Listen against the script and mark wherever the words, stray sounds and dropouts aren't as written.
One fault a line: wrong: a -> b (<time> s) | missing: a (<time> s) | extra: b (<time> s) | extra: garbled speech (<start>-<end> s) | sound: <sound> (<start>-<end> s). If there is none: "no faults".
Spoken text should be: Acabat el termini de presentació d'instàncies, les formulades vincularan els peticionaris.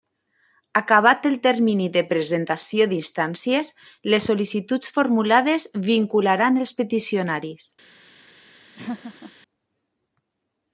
extra: sol·licituds (4.3 s)
sound: laugh (8.8-9.3 s)